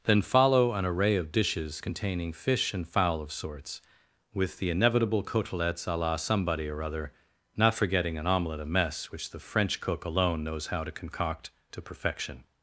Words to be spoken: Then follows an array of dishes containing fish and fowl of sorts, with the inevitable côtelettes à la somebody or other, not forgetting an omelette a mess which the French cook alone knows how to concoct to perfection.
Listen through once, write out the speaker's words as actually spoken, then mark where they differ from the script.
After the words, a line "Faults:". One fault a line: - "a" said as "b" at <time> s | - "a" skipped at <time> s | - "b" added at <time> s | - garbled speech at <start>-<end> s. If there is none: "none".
Then follow an array of dishes containing fish and fowl of sorts, with the inevitable côtelettes à la somebody or other, not forgetting an omelette a mess which the French cook alone knows how to concoct to perfection.
Faults:
- "follows" said as "follow" at 0.2 s